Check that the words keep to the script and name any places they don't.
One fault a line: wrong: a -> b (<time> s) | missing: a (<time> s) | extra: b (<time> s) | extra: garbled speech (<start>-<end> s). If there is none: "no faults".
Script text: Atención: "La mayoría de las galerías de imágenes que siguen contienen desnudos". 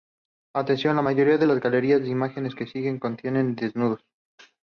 no faults